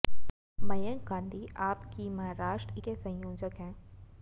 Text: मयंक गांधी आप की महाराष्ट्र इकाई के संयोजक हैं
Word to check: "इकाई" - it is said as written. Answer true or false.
false